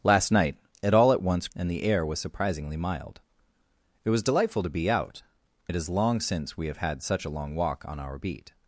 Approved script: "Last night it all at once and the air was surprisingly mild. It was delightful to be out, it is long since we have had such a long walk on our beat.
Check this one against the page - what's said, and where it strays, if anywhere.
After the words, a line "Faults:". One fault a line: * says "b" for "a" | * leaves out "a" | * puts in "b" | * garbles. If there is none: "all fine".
"Last night it all at once and the air was surprisingly mild. It was delightful to be out, it is long since we have had such a long walk on our beat.
Faults:
all fine